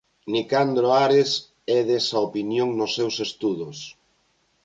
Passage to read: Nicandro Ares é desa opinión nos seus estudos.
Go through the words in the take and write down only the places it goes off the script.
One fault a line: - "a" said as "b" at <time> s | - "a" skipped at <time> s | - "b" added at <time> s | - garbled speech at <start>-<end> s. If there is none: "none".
none